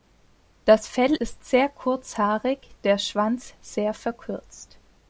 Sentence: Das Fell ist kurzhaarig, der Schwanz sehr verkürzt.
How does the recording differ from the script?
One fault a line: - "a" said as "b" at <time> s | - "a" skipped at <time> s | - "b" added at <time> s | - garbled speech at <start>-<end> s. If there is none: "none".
- "sehr" added at 1.4 s